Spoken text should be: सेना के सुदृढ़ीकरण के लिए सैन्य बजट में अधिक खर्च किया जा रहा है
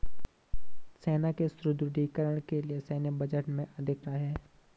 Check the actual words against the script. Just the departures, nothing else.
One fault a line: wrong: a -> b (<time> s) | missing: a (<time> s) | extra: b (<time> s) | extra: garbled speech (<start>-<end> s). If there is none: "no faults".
missing: खर्च किया जा (4.0 s)